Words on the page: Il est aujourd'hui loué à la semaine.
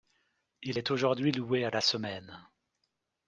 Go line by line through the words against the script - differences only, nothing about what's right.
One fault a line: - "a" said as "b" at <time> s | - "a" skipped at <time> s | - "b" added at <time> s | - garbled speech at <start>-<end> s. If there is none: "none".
none